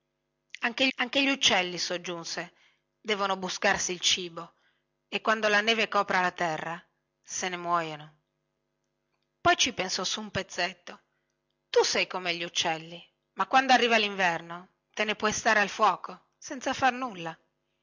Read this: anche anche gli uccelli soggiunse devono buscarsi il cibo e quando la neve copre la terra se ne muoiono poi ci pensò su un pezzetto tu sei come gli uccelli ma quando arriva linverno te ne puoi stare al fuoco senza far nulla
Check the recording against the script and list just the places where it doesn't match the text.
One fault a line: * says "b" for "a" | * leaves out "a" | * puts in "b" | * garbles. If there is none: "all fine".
all fine